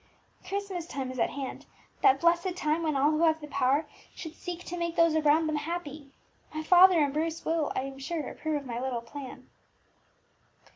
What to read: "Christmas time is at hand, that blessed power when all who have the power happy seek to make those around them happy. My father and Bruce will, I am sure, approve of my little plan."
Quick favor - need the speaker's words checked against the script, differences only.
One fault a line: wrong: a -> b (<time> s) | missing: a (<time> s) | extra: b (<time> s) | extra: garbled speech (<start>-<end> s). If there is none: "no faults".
wrong: power -> time (2.5 s)
wrong: happy -> should (4.2 s)